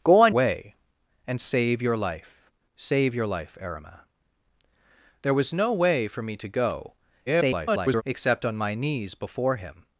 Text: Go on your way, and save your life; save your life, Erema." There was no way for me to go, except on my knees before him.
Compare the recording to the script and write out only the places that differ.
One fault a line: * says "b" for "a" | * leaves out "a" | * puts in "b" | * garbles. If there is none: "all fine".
* leaves out "your"
* garbles